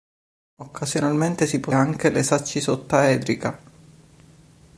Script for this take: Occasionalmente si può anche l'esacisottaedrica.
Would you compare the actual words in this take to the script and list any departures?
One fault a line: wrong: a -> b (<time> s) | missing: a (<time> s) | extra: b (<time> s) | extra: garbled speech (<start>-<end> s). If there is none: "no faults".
no faults